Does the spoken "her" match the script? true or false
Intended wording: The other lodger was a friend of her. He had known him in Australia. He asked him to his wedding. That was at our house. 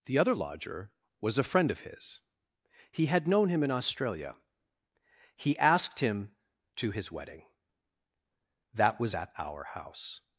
false